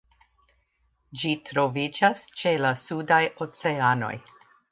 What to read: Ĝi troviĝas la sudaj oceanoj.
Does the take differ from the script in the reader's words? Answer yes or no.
yes